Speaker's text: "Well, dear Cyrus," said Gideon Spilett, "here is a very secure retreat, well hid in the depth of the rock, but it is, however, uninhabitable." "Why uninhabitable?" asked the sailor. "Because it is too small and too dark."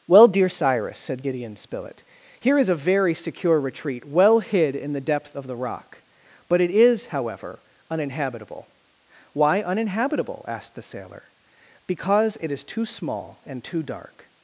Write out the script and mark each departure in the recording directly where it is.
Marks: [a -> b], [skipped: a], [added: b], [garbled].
"Well, dear Cyrus," said Gideon Spilett, "here is a very secure retreat, well hid in the depth of the rock, but it is, however, uninhabitable." "Why uninhabitable?" asked the sailor. "Because it is too small and too dark."